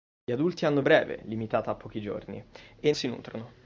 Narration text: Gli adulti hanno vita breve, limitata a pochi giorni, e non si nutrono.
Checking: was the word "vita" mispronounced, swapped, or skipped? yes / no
yes